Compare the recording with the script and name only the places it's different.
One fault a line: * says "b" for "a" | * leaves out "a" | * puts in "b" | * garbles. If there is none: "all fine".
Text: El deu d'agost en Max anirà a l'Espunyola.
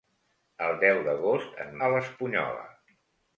* leaves out "Max anirà"